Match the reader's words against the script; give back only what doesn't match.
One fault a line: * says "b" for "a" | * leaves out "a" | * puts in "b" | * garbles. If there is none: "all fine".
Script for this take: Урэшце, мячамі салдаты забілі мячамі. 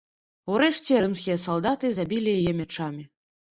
* says "рымскія" for "мячамі"
* puts in "яе"